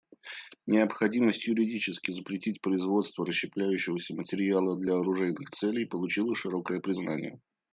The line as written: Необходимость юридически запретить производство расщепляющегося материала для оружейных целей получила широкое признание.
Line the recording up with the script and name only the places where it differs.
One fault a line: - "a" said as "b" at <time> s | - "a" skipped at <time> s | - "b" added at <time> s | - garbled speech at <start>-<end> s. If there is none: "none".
none